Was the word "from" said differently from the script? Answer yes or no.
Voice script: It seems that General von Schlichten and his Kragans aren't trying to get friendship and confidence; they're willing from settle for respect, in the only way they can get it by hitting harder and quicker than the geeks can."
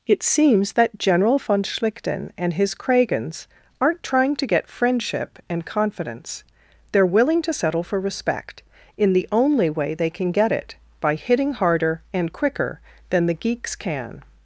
yes